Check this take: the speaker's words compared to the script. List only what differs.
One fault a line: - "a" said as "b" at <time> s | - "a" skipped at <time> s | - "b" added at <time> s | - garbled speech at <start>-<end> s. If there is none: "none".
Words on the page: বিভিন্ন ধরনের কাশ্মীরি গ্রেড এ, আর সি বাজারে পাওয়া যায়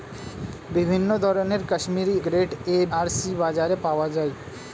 none